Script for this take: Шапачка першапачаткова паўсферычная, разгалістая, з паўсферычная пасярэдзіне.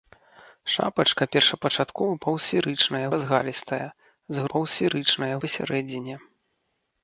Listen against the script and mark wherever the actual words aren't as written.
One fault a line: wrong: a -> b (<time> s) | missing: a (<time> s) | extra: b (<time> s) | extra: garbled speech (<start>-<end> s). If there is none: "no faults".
no faults